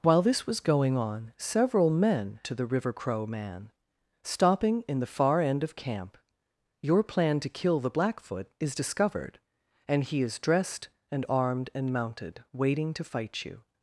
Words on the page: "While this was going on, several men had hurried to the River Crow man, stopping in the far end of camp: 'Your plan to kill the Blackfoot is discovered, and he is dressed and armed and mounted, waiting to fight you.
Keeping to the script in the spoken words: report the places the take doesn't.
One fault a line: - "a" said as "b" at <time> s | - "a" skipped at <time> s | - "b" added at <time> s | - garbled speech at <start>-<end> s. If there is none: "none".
- "had hurried" skipped at 2.4 s